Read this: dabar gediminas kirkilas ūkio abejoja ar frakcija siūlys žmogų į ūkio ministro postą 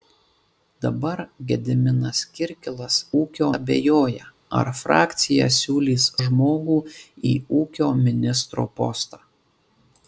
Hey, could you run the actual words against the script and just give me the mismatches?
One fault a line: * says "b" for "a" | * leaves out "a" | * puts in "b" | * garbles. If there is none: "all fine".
all fine